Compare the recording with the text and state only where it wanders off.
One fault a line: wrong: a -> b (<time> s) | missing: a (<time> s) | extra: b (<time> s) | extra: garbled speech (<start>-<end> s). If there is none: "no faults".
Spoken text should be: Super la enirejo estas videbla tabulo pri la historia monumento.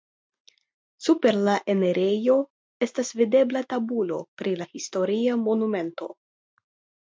no faults